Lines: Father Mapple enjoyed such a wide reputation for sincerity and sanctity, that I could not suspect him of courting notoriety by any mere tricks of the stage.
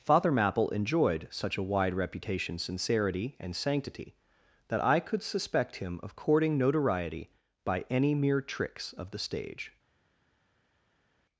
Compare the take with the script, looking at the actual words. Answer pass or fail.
fail